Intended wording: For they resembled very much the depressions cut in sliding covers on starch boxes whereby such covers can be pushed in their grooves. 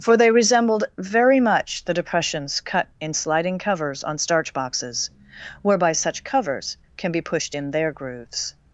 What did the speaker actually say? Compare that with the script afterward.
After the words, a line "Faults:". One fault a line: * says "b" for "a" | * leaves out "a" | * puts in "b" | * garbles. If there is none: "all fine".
For they resembled very much the depressions cut in sliding covers on starch boxes whereby such covers can be pushed in their grooves.
Faults:
all fine